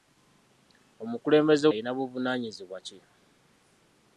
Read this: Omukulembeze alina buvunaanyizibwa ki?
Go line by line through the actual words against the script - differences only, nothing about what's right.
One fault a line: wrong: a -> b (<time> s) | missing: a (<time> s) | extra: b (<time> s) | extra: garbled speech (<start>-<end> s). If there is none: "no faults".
no faults